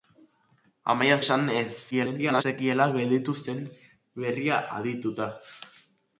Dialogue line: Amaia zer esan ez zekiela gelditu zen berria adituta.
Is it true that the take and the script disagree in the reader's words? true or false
true